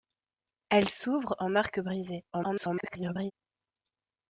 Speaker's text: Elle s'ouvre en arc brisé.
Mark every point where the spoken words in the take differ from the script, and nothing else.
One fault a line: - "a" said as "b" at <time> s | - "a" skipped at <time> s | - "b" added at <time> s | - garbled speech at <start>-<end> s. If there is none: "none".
- garbled speech at 2.3-3.3 s